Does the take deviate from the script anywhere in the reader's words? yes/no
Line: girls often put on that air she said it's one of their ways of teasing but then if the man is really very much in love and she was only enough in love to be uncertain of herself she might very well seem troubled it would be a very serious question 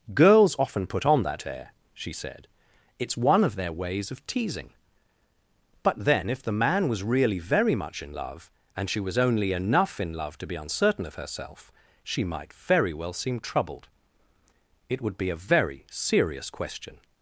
yes